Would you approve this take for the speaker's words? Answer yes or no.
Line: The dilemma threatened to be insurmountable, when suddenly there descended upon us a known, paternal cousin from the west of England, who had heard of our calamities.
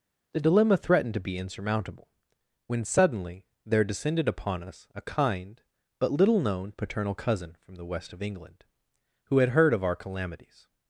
no